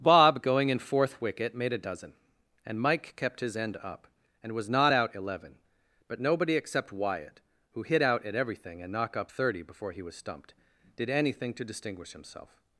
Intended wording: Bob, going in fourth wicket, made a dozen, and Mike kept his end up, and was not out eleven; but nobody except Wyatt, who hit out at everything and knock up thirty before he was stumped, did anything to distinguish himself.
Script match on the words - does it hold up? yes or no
yes